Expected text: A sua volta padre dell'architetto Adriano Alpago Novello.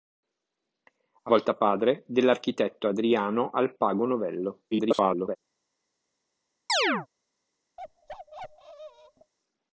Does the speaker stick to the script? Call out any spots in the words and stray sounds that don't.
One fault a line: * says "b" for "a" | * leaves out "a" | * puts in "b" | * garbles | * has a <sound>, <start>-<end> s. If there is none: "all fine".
* leaves out "sua"
* garbles
* has a chirp, 6.7-7.1 s
* has a bark, 7.8-9.3 s